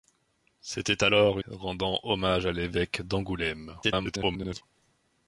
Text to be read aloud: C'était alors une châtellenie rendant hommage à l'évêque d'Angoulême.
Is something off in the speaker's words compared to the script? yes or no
yes